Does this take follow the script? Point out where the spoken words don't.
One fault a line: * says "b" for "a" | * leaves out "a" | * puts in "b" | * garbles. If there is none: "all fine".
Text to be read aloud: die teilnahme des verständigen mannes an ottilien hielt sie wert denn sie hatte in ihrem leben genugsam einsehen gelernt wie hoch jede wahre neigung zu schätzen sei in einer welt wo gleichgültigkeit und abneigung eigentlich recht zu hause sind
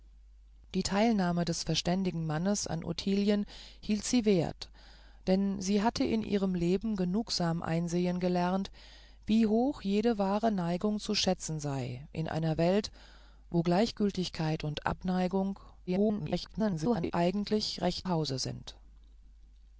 * garbles
* leaves out "zu"